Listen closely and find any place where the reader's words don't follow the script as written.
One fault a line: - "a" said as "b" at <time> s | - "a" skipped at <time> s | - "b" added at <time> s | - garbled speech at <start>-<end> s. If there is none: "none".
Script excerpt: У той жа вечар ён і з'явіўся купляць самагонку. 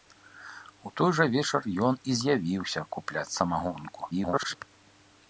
- garbled speech at 4.1-4.6 s